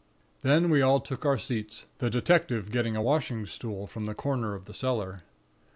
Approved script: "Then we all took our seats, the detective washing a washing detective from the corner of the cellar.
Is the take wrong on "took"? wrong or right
right